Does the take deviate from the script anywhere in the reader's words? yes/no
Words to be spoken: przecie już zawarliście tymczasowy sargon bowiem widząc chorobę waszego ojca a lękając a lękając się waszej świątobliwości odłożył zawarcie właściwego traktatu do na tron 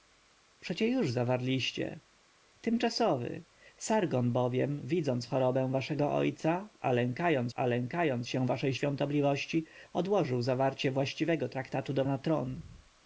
no